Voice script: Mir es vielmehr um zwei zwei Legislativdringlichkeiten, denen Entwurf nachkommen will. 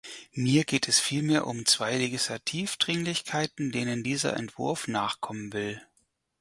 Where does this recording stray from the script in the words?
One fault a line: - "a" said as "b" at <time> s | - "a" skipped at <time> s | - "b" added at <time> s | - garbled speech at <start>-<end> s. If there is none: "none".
- "geht" added at 0.6 s
- "zwei" skipped at 1.9 s
- "dieser" added at 4.0 s